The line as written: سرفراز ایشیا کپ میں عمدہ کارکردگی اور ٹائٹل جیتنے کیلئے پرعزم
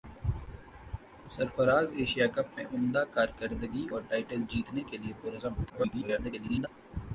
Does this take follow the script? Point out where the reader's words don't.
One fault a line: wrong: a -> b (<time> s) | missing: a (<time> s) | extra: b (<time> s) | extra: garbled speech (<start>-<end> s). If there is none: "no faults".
extra: garbled speech (5.7-6.7 s)